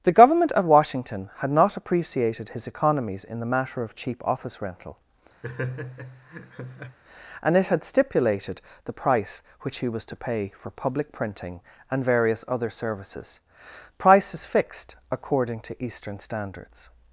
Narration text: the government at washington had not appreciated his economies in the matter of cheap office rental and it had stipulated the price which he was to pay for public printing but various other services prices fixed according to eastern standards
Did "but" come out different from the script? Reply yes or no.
yes